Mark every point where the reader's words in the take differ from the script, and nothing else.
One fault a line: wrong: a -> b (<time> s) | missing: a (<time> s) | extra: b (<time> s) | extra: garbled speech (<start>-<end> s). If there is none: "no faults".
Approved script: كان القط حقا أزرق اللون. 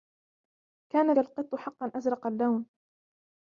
no faults